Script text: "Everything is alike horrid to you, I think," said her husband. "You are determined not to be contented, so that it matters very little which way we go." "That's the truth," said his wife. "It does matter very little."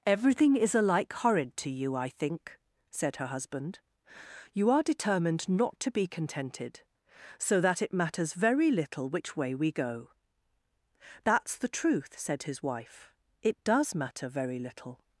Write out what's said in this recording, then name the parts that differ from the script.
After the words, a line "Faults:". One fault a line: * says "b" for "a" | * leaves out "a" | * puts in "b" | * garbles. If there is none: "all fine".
"Everything is alike horrid to you, I think," said her husband. "You are determined not to be contented, so that it matters very little which way we go." "That's the truth," said his wife. "It does matter very little."
Faults:
all fine